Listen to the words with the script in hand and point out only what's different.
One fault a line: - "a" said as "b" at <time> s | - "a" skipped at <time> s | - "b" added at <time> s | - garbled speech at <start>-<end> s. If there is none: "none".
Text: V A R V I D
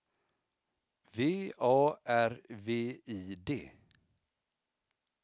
none